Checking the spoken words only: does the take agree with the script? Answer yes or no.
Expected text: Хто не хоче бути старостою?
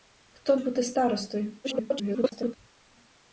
no